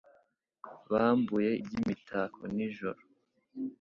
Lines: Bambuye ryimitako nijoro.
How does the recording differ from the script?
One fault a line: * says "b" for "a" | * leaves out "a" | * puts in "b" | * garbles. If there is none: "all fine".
all fine